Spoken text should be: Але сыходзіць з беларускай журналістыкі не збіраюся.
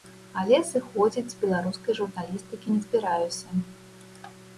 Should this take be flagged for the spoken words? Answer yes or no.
no